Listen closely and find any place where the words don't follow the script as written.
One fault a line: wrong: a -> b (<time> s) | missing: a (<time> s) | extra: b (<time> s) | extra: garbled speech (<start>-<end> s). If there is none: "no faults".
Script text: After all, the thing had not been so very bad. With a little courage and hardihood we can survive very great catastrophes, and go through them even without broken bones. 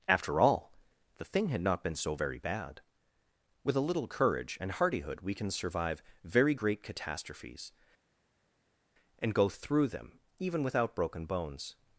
no faults